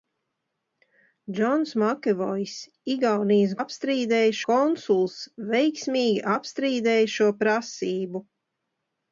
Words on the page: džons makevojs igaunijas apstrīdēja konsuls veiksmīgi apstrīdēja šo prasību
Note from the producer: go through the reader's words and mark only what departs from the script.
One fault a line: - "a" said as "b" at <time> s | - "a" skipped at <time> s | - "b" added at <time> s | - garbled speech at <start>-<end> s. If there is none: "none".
none